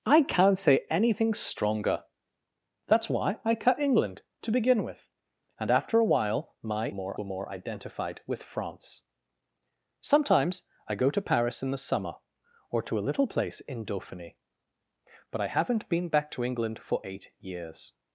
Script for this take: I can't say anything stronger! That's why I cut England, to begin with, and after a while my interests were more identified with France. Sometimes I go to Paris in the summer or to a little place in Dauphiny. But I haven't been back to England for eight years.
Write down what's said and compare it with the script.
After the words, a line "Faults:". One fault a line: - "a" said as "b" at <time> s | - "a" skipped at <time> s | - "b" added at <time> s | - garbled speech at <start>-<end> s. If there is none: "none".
I can't say anything stronger! That's why I cut England, to begin with, and after a while my more were more identified with France. Sometimes I go to Paris in the summer or to a little place in Dauphiny. But I haven't been back to England for eight years.
Faults:
- "interests" said as "more" at 6.9 s